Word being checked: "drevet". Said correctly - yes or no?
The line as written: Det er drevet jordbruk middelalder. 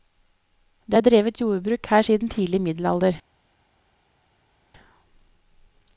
yes